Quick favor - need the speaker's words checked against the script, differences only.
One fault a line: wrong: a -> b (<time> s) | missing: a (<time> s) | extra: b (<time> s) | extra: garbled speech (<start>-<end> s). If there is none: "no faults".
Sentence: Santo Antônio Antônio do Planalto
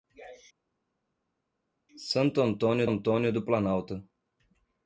no faults